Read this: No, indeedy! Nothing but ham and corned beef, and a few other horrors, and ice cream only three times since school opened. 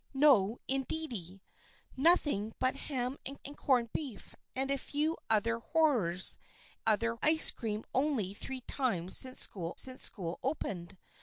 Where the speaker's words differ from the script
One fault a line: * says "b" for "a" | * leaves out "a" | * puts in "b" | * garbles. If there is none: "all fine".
* puts in "and"
* says "other" for "and"
* puts in "since school"